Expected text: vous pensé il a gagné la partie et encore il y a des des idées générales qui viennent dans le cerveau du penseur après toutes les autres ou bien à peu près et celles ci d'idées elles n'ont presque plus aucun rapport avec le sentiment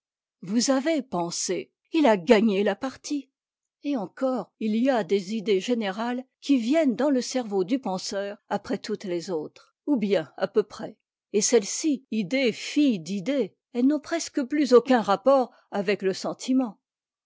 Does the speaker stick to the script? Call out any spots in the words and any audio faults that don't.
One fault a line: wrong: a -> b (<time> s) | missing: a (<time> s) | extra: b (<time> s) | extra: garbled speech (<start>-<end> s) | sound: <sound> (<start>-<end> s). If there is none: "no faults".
extra: avez (0.7 s)
missing: des (5.3 s)
extra: idées filles (12.1 s)